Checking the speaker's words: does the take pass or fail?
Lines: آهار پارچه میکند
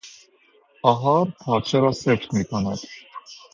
fail